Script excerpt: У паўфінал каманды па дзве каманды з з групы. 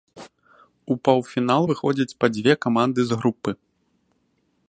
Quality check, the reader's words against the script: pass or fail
fail